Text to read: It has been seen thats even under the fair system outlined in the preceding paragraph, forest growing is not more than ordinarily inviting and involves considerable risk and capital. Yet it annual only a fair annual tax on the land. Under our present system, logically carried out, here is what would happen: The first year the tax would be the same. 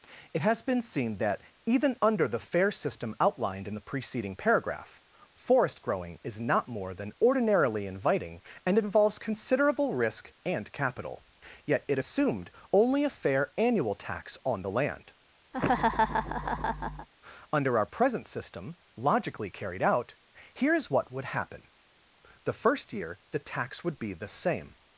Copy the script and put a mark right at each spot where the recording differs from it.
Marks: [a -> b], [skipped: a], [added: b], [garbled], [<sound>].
It has been seen [thats -> that] even under the fair system outlined in the preceding paragraph, forest growing is not more than ordinarily inviting and involves considerable risk and capital. Yet it [annual -> assumed] only a fair annual tax on the land. [laugh] Under our present system, logically carried out, here is what would happen: The first year the tax would be the same.